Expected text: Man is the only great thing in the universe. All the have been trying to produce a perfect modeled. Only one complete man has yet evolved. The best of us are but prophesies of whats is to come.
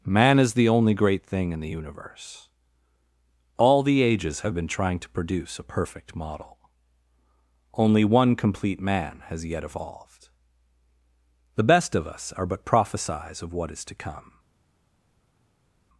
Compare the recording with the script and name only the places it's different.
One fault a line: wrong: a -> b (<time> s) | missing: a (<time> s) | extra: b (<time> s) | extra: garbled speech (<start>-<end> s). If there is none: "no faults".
extra: ages (4.0 s)
wrong: modeled -> model (6.2 s)
wrong: whats -> what (13.5 s)